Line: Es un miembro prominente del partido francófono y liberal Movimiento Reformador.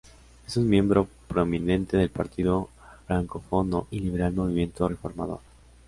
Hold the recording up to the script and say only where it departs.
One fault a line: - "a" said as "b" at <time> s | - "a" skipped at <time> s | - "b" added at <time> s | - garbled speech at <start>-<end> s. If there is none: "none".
none